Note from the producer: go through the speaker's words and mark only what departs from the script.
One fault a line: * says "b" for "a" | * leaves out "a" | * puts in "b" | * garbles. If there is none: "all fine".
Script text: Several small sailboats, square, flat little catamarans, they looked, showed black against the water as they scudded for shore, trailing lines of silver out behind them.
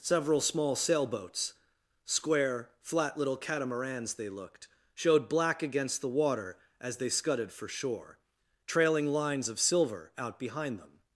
all fine